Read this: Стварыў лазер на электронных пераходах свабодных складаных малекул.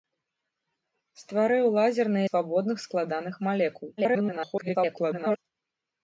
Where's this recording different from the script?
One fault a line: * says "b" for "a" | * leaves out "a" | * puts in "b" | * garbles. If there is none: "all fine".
* leaves out "электронных пераходах"
* garbles